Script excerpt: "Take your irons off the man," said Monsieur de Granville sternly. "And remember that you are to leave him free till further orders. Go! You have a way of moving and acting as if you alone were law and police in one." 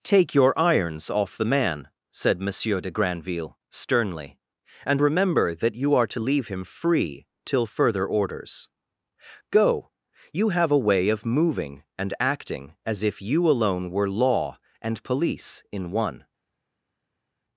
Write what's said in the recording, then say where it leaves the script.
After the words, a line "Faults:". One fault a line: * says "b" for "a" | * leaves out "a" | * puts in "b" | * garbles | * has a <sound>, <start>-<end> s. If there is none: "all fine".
"Take your irons off the man," said Monsieur de Granville sternly. "And remember that you are to leave him free till further orders. Go! You have a way of moving and acting as if you alone were law and police in one."
Faults:
all fine